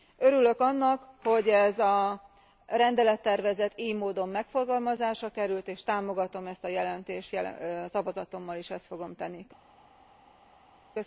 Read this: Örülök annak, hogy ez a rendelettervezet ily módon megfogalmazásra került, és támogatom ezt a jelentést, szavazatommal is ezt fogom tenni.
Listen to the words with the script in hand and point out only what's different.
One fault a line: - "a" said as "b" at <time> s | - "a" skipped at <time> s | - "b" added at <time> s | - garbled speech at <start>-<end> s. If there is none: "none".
none